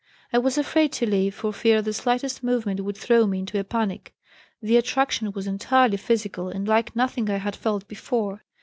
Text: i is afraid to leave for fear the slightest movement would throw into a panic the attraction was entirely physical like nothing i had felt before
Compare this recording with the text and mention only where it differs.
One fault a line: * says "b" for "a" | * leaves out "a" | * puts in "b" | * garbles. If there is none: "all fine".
* says "was" for "is"
* puts in "me"
* puts in "and"